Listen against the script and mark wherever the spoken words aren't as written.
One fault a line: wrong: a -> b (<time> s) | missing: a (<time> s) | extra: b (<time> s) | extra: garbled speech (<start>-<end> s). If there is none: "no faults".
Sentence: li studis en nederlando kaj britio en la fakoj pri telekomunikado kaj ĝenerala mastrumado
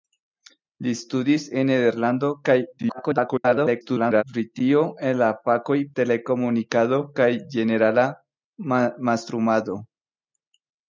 extra: garbled speech (2.8-4.2 s)
missing: pri (5.8 s)